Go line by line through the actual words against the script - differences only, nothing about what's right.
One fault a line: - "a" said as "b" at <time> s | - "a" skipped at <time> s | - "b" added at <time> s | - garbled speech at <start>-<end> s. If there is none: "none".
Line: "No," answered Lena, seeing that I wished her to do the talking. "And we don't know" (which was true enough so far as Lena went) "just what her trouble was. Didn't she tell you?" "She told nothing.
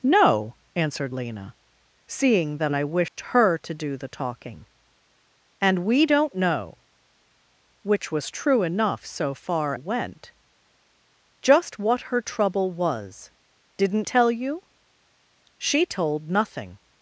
- "as Lena" skipped at 9.7 s
- "she" skipped at 14.1 s